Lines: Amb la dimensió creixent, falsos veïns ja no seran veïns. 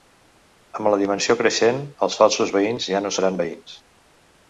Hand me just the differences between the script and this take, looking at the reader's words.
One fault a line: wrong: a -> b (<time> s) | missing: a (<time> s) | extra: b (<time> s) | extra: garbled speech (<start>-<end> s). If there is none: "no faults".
extra: els (2.1 s)